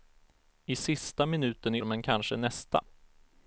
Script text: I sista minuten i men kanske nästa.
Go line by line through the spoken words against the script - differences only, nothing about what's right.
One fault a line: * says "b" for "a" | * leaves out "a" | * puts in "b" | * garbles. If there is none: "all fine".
all fine